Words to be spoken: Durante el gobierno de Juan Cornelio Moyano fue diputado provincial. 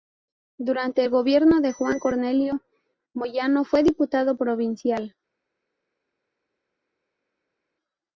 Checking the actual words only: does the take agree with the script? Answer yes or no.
yes